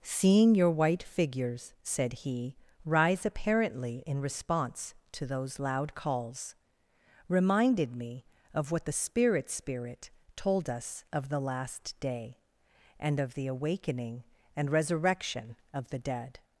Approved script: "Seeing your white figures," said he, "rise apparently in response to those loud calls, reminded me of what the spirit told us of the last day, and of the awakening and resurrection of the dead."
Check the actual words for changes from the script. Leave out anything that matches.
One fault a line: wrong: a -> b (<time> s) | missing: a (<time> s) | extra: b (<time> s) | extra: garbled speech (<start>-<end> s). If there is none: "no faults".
extra: spirit (9.5 s)